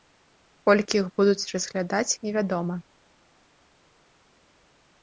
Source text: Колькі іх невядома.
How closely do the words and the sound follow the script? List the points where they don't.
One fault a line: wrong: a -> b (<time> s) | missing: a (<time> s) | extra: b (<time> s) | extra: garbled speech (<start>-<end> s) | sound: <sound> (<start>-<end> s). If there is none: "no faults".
extra: будуць разглядаць (1.2 s)